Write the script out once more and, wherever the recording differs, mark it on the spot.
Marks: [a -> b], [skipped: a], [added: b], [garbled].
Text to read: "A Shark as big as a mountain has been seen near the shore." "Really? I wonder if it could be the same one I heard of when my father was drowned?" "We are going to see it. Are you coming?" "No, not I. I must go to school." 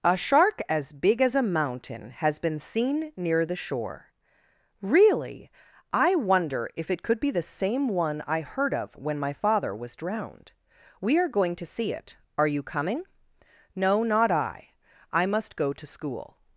"A Shark as big as a mountain has been seen near the shore." "Really? I wonder if it could be the same one I heard of when my father was drowned?" "We are going to see it. Are you coming?" "No, not I. I must go to school."